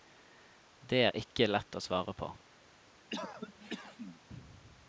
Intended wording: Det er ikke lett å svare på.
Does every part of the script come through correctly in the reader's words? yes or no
yes